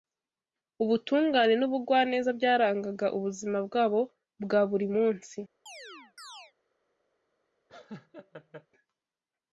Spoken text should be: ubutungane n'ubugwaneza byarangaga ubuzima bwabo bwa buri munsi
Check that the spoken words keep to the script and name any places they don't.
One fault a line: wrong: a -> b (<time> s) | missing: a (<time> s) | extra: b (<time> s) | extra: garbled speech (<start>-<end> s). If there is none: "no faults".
no faults